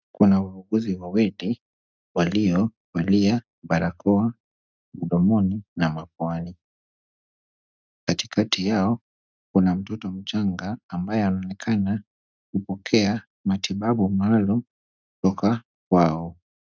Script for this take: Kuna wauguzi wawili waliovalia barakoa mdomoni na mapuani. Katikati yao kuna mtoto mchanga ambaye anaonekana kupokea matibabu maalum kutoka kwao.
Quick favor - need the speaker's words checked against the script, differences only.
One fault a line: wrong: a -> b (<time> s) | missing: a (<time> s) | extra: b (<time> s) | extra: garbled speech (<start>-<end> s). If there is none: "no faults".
no faults